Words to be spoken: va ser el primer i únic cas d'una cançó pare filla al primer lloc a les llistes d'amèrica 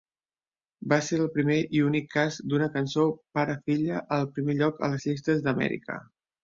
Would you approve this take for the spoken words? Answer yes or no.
yes